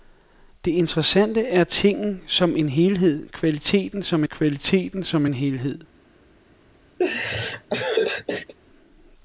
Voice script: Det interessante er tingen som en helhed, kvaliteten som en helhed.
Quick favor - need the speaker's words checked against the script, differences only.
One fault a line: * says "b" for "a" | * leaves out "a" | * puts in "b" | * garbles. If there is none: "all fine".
* puts in "kvaliteten som"